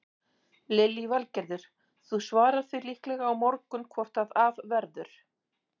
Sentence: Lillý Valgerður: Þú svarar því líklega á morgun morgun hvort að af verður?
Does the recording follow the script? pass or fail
fail